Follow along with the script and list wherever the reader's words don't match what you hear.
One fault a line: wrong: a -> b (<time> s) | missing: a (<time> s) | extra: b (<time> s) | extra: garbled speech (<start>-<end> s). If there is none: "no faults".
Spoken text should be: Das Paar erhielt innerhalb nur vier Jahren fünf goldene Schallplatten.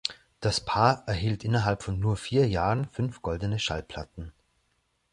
extra: von (1.8 s)